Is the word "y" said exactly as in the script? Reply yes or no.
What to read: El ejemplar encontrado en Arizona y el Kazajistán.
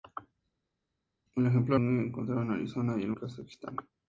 yes